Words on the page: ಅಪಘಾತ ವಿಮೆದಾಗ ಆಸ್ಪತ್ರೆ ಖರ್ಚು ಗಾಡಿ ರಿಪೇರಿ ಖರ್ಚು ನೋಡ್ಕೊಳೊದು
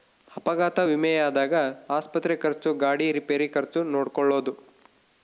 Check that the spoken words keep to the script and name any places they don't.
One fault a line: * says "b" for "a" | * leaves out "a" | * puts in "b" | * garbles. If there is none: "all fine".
all fine